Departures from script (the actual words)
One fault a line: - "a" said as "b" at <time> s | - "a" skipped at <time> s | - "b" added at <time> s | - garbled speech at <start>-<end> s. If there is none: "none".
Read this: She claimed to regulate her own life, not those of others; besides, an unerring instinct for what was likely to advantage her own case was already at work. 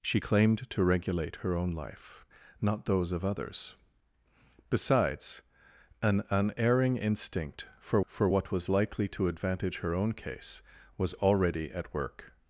- "for" added at 8.1 s